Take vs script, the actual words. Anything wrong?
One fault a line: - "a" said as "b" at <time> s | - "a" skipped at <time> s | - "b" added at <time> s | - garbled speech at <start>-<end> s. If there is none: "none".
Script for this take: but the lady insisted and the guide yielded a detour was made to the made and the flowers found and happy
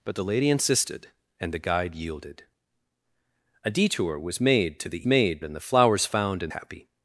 none